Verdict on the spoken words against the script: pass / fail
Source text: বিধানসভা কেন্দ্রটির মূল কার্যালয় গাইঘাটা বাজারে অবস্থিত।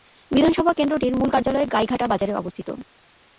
pass